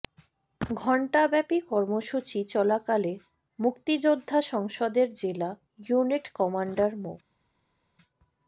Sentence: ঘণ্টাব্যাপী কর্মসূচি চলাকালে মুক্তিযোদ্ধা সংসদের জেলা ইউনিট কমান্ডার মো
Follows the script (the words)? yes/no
yes